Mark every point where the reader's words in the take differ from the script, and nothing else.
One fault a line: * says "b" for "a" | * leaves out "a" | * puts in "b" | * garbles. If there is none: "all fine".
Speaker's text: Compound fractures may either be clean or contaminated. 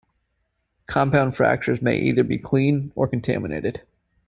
all fine